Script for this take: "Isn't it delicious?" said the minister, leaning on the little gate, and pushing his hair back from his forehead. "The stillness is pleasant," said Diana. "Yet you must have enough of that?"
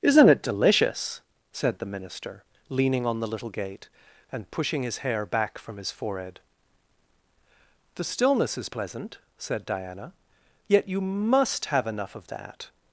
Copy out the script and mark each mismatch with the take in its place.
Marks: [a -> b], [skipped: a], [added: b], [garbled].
"Isn't it delicious?" said the minister, leaning on the little gate, and pushing his hair back from his forehead. "The stillness is pleasant," said Diana. "Yet you must have enough of that?"